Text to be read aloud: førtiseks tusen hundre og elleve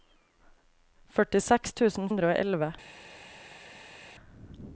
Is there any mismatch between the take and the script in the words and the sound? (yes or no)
no